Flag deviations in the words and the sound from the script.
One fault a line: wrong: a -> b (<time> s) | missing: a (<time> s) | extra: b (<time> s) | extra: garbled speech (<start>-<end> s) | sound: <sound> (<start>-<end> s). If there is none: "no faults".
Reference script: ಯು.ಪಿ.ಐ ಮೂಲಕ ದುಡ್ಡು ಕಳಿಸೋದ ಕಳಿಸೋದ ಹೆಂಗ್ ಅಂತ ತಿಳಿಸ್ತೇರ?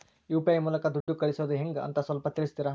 sound: dropout (1.0-1.1 s)
missing: ಕಳಿಸೋದ (1.5 s)
extra: ಸ್ವಲ್ಪ (2.0 s)